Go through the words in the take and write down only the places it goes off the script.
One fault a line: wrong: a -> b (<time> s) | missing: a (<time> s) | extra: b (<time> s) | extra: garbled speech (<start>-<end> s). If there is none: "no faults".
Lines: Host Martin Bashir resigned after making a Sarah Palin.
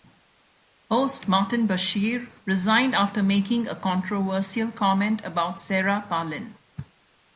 extra: controversial comment about (3.8 s)